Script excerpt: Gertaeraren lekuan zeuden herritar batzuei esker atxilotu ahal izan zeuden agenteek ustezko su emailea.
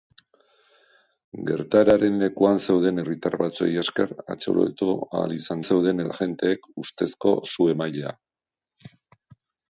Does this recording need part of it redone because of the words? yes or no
no